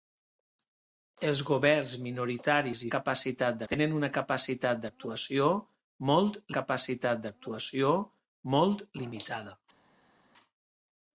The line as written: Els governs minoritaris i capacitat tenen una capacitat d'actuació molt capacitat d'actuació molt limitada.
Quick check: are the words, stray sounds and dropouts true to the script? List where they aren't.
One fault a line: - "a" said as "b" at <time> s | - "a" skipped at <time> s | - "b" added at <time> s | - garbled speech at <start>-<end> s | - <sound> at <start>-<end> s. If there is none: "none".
none